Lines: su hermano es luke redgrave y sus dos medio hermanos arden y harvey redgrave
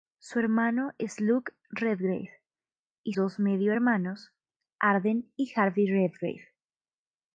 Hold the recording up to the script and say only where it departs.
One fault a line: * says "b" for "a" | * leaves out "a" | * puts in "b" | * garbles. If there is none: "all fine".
* leaves out "sus"